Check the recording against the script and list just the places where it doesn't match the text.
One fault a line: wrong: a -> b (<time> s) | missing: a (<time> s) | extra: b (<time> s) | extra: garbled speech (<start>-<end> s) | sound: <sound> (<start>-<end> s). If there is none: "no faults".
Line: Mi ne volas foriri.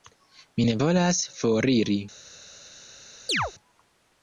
sound: chirp (3.3-3.5 s)